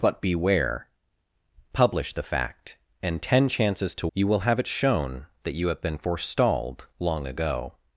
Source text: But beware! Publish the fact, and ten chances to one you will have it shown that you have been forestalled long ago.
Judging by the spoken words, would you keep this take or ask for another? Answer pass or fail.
fail